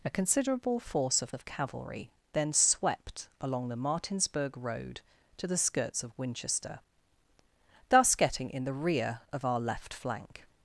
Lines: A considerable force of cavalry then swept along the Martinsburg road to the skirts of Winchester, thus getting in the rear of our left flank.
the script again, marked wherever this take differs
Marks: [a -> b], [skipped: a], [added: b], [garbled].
A considerable force of [added: of] cavalry then swept along the Martinsburg road to the skirts of Winchester, thus getting in the rear of our left flank.